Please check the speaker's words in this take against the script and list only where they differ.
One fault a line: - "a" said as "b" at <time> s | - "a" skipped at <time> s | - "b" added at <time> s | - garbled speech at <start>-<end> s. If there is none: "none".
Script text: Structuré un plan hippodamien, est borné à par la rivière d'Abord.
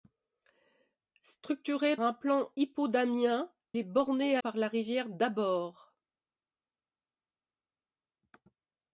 none